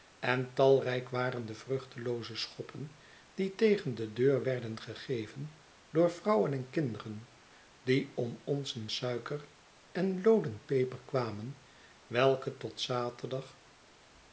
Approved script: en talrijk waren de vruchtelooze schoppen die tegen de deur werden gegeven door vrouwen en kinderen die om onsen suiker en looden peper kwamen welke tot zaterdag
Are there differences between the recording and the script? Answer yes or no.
no